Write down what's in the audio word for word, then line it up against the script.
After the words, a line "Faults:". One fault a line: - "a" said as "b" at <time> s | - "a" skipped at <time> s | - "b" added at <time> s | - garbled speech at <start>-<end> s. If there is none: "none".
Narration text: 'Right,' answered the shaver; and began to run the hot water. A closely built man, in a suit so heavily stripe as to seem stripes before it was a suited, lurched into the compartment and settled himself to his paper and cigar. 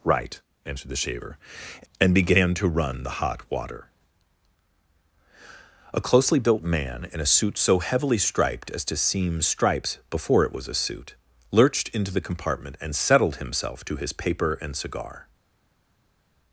'Right,' answered the shaver; and began to run the hot water. A closely built man, in a suit so heavily striped as to seem stripes before it was a suit, lurched into the compartment and settled himself to his paper and cigar.
Faults:
- "stripe" said as "striped" at 8.2 s
- "suited" said as "suit" at 10.7 s